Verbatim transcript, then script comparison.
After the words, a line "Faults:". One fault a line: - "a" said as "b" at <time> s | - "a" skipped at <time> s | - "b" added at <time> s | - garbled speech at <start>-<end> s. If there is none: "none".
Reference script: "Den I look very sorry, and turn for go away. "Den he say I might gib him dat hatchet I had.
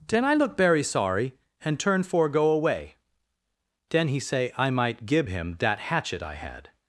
"Den I look very sorry, and turn for go away. "Den he say I might gib him dat hatchet I had.
Faults:
none